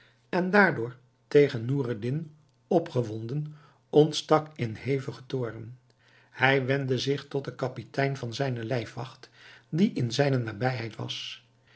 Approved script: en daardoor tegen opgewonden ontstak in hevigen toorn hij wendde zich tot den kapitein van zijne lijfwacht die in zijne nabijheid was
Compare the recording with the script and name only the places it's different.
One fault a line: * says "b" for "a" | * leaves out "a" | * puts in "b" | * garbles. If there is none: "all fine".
* puts in "noureddin"